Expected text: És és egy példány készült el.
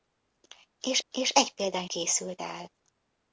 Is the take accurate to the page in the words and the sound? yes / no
yes